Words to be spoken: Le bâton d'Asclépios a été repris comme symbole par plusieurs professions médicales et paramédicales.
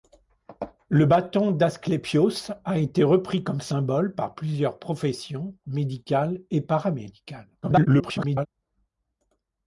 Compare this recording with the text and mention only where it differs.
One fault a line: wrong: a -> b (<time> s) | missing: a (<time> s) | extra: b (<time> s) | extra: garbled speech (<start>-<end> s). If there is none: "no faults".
extra: garbled speech (7.6-8.5 s)